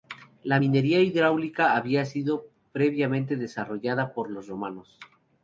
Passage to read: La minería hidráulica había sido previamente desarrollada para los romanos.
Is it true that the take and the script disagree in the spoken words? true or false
true